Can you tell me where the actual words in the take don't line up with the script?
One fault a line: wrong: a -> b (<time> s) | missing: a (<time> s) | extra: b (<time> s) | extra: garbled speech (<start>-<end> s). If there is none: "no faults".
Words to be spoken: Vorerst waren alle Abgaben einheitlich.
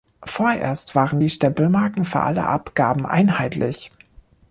extra: die Stempelmarken für (1.2 s)